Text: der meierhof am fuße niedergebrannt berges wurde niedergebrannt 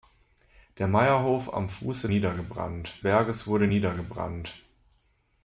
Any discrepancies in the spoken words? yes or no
no